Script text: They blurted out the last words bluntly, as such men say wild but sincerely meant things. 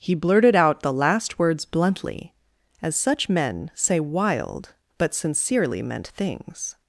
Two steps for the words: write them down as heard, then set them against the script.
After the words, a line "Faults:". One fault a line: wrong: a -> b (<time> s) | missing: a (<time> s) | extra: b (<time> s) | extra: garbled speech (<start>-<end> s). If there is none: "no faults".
He blurted out the last words bluntly, as such men say wild but sincerely meant things.
Faults:
wrong: They -> He (0.0 s)